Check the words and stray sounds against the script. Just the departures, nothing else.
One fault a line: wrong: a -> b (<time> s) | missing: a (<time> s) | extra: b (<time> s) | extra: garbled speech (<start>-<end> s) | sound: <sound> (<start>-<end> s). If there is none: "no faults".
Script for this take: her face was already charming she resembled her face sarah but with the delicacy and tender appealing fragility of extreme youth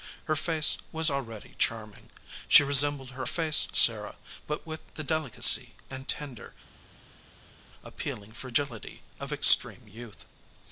no faults